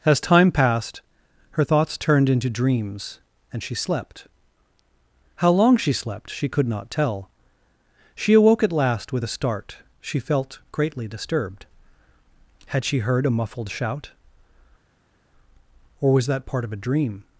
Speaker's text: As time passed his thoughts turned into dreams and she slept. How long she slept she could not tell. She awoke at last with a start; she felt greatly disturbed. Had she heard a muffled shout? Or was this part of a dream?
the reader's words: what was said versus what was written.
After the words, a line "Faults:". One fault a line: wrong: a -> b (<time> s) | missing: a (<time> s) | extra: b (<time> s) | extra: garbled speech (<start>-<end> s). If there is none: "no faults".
As time passed her thoughts turned into dreams and she slept. How long she slept she could not tell. She awoke at last with a start; she felt greatly disturbed. Had she heard a muffled shout? Or was that part of a dream?
Faults:
wrong: his -> her (1.5 s)
wrong: this -> that (16.3 s)